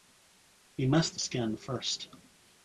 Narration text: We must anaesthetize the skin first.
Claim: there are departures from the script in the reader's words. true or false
true